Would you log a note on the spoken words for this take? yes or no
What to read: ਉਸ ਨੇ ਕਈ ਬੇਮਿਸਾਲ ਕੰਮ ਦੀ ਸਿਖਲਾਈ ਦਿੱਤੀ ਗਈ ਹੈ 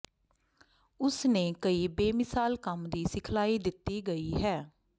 no